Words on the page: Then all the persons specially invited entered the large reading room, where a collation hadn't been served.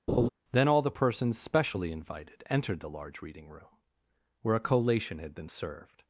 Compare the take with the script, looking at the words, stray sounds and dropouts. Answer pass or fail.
fail